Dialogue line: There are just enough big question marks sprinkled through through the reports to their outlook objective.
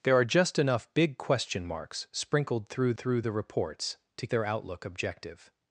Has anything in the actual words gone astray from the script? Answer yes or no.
no